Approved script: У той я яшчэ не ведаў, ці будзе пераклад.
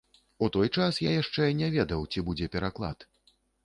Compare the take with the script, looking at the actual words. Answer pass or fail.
fail